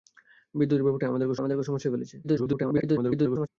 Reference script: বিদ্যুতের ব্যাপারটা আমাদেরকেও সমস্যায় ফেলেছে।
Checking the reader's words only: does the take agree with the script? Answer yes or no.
no